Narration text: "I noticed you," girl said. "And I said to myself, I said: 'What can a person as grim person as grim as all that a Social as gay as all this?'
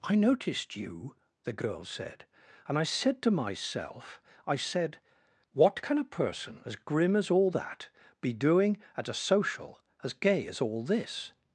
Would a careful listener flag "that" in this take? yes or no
yes